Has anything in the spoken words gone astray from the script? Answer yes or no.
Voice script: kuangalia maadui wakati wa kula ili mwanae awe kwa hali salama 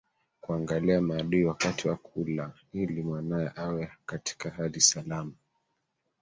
yes